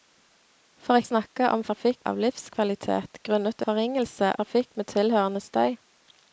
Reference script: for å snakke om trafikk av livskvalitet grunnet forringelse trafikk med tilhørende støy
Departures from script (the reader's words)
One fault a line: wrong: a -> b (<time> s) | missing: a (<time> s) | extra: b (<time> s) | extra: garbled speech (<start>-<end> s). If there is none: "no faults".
no faults